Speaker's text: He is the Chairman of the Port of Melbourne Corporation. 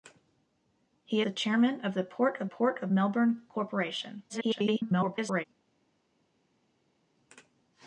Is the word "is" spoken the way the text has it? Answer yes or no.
no